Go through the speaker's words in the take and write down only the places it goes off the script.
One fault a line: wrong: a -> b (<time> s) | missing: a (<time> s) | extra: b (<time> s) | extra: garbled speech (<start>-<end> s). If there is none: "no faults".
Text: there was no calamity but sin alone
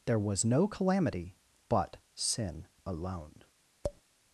no faults